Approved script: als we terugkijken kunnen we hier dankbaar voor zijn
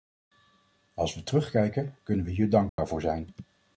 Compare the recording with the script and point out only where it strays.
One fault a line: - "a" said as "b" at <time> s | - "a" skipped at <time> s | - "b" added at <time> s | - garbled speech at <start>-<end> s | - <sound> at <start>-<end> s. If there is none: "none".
- dropout at 2.7-2.8 s